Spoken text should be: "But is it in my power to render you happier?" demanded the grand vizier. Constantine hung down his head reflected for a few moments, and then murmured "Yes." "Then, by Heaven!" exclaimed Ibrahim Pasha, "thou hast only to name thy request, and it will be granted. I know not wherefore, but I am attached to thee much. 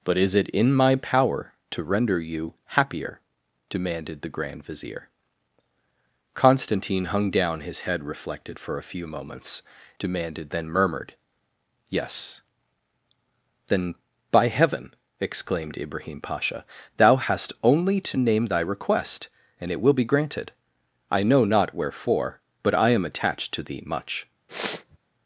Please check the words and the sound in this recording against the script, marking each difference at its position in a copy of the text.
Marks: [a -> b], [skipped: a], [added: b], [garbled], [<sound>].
"But is it in my power to render you happier?" demanded the grand vizier. Constantine hung down his head reflected for a few moments, [and -> demanded] then murmured "Yes." "Then, by Heaven!" exclaimed Ibrahim Pasha, "thou hast only to name thy request, and it will be granted. I know not wherefore, but I am attached to thee much. [sniff]